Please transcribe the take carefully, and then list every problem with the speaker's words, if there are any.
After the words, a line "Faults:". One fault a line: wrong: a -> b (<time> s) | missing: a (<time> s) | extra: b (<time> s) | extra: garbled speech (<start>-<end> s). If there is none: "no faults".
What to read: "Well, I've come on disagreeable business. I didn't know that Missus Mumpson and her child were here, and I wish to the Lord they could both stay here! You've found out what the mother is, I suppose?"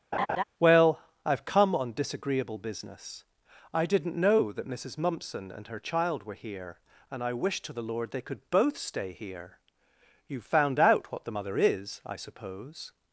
"Well, I've come on disagreeable business. I didn't know that Missus Mumpson and her child were here, and I wish to the Lord they could both stay here! You've found out what the mother is, I suppose?"
Faults:
no faults